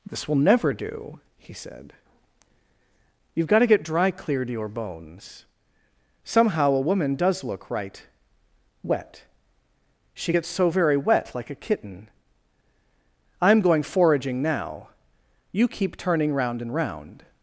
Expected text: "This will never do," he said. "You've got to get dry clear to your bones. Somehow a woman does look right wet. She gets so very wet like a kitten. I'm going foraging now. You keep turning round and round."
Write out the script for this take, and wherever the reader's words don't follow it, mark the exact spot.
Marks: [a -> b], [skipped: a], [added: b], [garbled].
"This will never do," he said. "You've got to get dry clear to your bones. Somehow a woman does look right wet. She gets so very wet like a kitten. I'm going foraging now. You keep turning round and round."